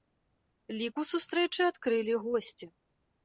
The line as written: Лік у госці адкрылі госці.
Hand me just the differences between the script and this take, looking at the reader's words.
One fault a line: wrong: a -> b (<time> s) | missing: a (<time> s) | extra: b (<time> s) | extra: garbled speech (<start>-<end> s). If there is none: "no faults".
wrong: госці -> сустрэчы (1.1 s)